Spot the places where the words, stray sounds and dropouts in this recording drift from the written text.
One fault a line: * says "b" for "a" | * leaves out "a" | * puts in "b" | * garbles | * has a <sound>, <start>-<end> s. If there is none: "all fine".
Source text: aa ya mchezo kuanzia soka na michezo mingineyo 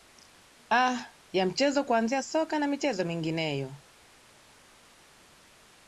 all fine